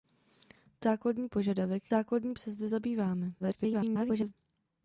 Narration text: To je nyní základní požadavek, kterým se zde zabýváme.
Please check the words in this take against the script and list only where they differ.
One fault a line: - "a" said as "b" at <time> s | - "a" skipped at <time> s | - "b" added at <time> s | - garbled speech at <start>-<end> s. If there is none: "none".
- "je nyní" skipped at 0.9 s
- "kterým" said as "základní" at 1.9 s
- garbled speech at 3.4-4.3 s